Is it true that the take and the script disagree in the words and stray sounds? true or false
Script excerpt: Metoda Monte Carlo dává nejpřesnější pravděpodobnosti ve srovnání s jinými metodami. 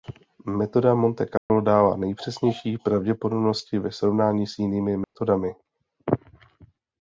true